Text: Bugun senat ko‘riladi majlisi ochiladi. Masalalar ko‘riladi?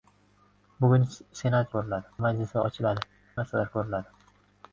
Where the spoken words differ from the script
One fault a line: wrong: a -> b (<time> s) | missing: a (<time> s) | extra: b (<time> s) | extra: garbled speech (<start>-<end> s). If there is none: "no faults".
no faults